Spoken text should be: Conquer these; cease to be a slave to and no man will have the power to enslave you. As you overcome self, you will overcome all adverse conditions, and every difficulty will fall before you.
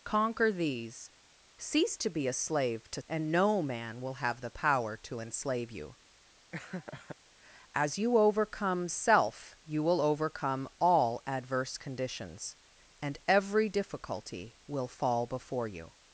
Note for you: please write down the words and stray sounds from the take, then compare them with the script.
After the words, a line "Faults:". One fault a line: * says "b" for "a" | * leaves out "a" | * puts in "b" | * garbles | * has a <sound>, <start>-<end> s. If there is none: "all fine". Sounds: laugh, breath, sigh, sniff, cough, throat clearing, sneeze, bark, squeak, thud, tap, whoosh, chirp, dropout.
Conquer these; cease to be a slave to and no man will have the power to enslave you. As you overcome self, you will overcome all adverse conditions, and every difficulty will fall before you.
Faults:
* has a laugh, 6.5-7.2 s